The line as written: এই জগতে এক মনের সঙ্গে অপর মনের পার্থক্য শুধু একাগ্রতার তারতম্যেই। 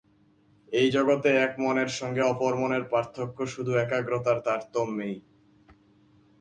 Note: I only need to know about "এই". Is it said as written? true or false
true